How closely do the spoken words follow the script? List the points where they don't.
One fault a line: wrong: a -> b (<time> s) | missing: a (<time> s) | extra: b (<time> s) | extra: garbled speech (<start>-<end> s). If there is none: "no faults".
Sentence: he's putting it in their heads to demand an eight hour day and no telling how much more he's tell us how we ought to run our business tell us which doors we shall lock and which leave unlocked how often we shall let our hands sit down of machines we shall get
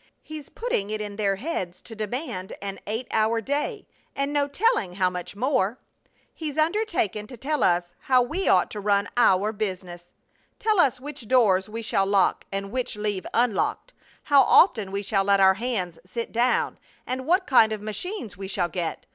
extra: undertaken to (6.6 s)
extra: and what kind (17.1 s)